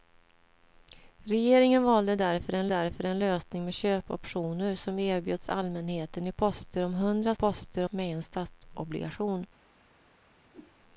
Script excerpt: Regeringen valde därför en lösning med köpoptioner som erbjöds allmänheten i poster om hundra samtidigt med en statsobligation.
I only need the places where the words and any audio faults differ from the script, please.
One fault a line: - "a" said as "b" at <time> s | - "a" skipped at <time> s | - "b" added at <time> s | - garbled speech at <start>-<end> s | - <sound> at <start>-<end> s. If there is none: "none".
- "därför en" added at 2.7 s
- "samtidigt" said as "poster" at 7.3 s
- whoosh at 10.5-10.8 s